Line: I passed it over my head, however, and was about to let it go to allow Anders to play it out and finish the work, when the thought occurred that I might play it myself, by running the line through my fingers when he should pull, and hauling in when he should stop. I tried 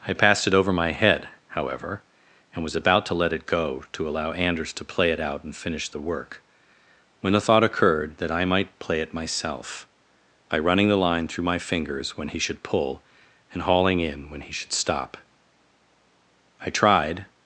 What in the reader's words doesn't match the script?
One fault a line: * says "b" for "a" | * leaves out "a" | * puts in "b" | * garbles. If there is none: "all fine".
all fine